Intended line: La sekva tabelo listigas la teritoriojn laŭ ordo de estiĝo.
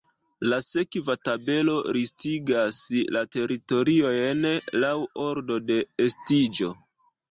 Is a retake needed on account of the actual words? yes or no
no